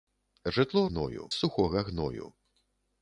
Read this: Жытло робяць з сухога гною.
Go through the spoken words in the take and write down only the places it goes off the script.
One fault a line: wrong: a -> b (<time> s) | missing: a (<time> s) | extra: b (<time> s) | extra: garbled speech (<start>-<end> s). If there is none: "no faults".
wrong: робяць -> гною (0.9 s)